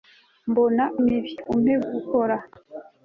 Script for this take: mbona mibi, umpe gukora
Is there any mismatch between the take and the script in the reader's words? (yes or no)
no